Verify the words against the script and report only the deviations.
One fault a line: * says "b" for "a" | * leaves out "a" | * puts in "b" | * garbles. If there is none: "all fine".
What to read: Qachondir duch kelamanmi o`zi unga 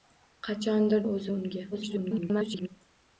* leaves out "duch kelamanmi"
* garbles